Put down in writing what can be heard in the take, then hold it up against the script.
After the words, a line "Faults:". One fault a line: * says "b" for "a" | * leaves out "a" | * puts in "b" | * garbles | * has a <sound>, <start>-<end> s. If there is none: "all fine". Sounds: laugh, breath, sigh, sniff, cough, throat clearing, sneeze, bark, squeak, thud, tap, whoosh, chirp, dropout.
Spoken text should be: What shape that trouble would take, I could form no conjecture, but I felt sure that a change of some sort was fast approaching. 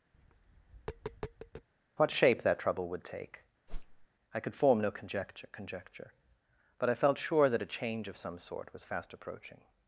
What shape that trouble would take, I could form no conjecture conjecture, but I felt sure that a change of some sort was fast approaching.
Faults:
* has a tap, 0.1-1.7 s
* has a whoosh, 3.7-4.1 s
* puts in "conjecture"